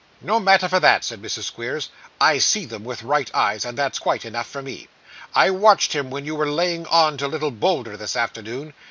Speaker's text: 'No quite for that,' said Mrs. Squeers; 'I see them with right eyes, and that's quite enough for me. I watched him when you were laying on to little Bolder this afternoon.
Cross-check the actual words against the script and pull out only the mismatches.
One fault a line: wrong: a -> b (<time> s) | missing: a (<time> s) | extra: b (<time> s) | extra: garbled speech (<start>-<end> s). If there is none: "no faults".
wrong: quite -> matter (0.4 s)